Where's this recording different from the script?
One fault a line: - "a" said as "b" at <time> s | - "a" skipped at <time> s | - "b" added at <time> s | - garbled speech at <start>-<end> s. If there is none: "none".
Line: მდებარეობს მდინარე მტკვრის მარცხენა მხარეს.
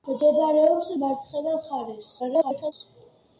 - "მდინარე მტკვრის" skipped at 0.9 s
- garbled speech at 2.2-2.7 s